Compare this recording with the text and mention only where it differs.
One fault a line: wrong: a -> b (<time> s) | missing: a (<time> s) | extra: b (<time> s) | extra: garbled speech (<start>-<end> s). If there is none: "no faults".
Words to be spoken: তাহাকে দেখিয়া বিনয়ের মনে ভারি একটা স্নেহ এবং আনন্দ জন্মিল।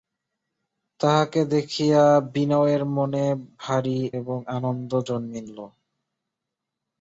missing: একটা স্নেহ (4.0 s)